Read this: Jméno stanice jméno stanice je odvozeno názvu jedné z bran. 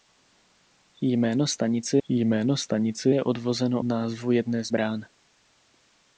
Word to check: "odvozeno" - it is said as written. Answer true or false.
true